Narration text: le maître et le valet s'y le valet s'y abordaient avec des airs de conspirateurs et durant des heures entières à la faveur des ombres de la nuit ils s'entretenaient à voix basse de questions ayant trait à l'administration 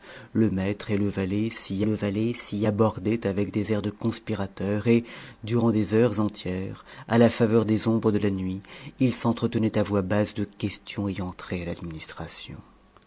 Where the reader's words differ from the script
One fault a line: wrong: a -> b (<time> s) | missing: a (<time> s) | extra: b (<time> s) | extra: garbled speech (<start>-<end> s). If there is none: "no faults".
no faults